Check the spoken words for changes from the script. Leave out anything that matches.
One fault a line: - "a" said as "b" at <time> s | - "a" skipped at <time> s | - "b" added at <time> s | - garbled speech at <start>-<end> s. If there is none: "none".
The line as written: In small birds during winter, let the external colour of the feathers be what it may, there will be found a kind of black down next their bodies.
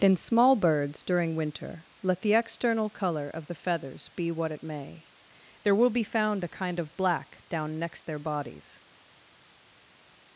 none